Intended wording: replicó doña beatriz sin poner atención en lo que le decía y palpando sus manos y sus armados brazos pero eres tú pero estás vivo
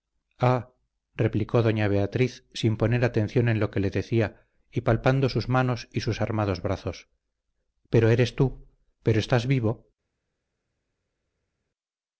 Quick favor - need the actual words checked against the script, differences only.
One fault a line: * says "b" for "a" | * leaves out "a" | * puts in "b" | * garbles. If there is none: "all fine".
all fine